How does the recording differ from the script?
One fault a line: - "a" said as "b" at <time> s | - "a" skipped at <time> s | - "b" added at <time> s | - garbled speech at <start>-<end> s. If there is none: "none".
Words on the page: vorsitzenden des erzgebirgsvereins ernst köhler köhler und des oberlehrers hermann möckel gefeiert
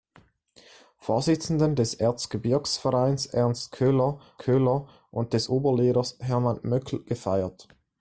none